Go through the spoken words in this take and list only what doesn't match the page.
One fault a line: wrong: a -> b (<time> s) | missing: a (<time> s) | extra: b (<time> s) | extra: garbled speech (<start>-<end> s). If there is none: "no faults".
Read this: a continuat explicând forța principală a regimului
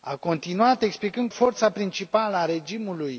no faults